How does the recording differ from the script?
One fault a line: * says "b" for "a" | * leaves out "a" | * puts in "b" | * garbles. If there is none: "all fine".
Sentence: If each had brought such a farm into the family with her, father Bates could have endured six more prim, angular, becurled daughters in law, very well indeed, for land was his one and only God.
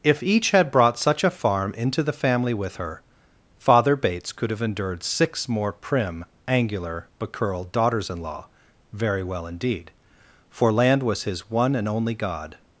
all fine